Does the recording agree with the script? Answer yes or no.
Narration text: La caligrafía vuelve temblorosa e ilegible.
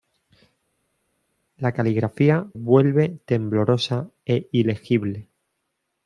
yes